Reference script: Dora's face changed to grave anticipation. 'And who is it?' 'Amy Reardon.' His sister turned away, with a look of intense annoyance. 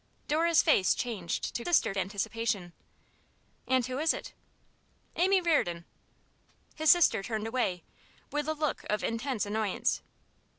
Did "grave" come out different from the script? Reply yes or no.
yes